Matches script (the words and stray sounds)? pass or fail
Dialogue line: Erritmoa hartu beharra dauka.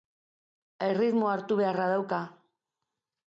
pass